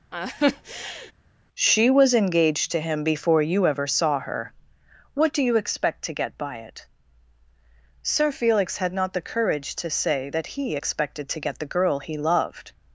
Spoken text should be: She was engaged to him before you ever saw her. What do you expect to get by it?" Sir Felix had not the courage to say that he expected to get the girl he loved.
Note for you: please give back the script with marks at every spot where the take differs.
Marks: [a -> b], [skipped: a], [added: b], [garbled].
She was engaged to him before you ever saw her. What do you expect to get by it?" Sir Felix had not the courage to say that he expected to get the girl he loved.